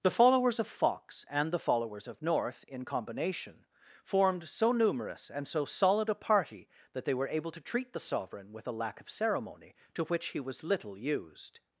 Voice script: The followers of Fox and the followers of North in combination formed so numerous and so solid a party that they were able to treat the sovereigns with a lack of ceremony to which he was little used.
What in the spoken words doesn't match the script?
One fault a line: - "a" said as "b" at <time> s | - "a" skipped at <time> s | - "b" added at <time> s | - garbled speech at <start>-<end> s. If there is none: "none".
- "sovereigns" said as "sovereign" at 8.0 s